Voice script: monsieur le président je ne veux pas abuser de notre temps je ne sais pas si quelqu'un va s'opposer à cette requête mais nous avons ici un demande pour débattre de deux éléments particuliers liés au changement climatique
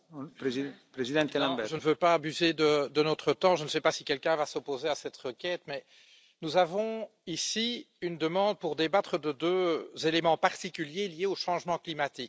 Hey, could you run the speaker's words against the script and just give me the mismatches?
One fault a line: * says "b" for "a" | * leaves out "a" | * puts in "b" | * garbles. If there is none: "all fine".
* says "une" for "un"